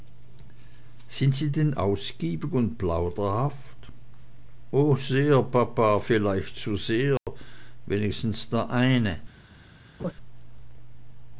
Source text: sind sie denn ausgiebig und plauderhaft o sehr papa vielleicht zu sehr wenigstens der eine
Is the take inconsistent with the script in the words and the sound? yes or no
yes